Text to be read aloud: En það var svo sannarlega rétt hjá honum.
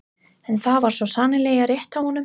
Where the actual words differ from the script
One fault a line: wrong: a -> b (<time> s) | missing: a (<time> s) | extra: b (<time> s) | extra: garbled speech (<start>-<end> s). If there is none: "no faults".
no faults